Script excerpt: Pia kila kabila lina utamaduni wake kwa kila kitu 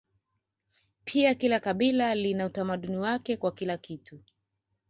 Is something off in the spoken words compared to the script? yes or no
no